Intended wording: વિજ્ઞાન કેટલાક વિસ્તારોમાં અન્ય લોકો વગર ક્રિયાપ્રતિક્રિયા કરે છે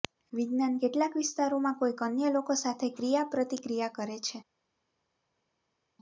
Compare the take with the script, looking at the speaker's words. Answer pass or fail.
fail